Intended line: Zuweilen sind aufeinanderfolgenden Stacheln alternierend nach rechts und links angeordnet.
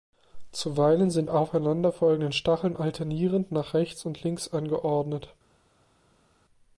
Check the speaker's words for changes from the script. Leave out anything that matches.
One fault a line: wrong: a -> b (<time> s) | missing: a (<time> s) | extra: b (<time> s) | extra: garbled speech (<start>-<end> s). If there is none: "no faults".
no faults